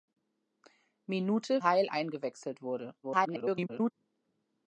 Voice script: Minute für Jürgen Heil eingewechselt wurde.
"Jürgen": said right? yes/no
no